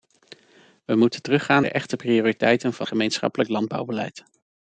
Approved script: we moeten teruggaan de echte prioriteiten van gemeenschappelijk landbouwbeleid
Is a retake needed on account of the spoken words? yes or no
no